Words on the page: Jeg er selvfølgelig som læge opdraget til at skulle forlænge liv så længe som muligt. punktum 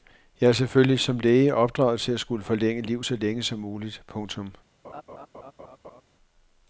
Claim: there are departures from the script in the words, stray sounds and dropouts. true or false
true